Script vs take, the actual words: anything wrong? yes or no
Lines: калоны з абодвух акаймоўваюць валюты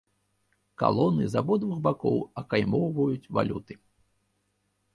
yes